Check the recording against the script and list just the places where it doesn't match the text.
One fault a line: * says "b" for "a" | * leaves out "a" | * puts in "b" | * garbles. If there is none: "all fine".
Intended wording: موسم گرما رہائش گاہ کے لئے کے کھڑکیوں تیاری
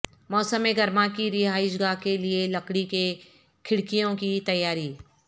* puts in "کی"
* puts in "لکڑی"
* puts in "کی"